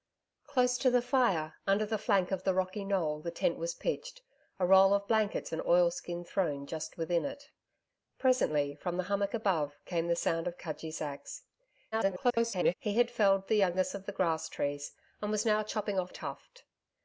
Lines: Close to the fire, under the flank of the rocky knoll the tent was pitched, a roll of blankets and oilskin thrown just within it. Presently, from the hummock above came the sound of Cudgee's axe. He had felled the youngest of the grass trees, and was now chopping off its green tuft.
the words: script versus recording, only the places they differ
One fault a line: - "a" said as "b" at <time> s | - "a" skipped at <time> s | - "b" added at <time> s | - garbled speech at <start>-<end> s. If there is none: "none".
- garbled speech at 11.9-12.7 s
- "its green" skipped at 16.1 s